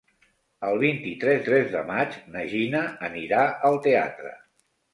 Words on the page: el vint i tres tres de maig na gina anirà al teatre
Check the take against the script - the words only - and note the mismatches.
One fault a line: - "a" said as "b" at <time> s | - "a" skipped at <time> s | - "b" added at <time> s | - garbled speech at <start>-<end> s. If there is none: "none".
none